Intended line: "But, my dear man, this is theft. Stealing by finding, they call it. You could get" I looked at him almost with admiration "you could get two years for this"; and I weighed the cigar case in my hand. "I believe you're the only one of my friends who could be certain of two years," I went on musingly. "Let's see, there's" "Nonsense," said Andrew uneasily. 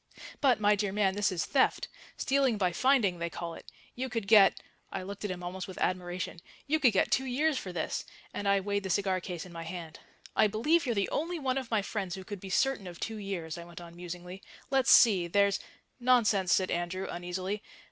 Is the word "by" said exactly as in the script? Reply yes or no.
yes